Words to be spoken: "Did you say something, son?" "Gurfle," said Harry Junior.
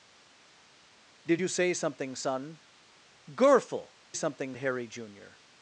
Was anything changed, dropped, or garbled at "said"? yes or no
yes